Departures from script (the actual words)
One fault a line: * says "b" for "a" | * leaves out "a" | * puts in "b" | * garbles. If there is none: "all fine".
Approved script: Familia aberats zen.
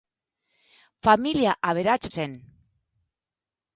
all fine